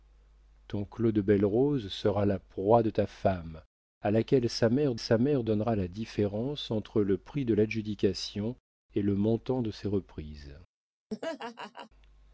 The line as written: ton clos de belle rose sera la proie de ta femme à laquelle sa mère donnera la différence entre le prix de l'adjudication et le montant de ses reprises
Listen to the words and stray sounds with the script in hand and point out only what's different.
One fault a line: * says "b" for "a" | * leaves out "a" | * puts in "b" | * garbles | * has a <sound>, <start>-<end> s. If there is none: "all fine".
* puts in "sa mère"
* has a laugh, 11.1-11.9 s